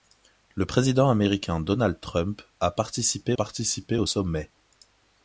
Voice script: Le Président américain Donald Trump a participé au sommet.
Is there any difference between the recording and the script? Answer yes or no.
yes